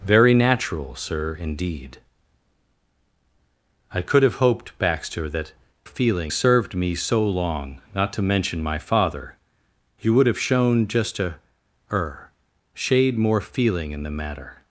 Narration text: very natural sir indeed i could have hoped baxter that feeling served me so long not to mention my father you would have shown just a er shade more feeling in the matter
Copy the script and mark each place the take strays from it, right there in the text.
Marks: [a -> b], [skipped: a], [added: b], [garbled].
very natural sir indeed i could have hoped baxter that feeling served me so long not to mention my father you would have shown just a er shade more feeling in the matter